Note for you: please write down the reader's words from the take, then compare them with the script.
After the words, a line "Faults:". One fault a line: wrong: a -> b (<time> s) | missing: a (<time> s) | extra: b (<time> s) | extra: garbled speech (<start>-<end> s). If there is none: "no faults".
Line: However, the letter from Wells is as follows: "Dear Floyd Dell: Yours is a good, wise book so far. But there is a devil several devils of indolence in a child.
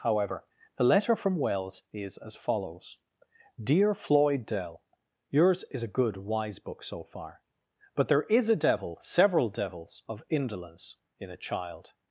However, the letter from Wells is as follows: "Dear Floyd Dell: Yours is a good, wise book so far. But there is a devil several devils of indolence in a child.
Faults:
no faults